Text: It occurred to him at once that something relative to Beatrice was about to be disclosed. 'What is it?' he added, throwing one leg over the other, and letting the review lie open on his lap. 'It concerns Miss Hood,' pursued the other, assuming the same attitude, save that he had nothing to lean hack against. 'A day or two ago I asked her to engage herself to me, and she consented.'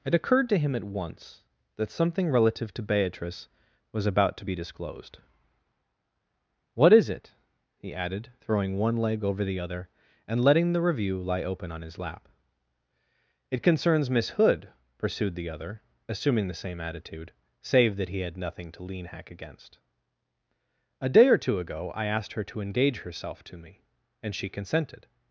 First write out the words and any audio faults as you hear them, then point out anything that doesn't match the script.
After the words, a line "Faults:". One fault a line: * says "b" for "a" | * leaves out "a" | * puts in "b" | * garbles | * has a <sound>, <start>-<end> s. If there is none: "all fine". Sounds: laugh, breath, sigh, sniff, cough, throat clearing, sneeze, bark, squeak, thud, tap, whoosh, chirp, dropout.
It occurred to him at once that something relative to Beatrice was about to be disclosed. 'What is it?' he added, throwing one leg over the other, and letting the review lie open on his lap. 'It concerns Miss Hood,' pursued the other, assuming the same attitude, save that he had nothing to lean hack against. 'A day or two ago I asked her to engage herself to me, and she consented.'
Faults:
all fine